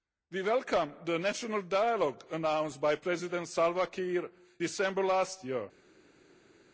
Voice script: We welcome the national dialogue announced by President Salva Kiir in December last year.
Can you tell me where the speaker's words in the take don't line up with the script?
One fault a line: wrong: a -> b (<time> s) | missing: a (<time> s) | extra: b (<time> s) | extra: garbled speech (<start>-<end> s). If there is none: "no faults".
missing: in (4.3 s)